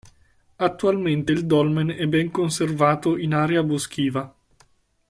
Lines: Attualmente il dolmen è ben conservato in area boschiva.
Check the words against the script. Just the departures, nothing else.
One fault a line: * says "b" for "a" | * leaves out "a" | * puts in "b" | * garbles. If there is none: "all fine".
all fine